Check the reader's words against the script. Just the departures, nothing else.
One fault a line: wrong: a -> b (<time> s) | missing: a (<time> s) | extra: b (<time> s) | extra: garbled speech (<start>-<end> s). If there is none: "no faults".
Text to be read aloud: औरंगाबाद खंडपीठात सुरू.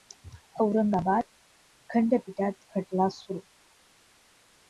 extra: खटला (2.7 s)